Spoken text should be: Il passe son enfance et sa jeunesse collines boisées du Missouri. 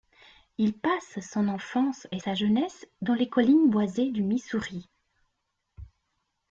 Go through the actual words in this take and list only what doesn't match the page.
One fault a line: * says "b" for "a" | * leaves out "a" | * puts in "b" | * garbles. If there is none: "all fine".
* puts in "dans les"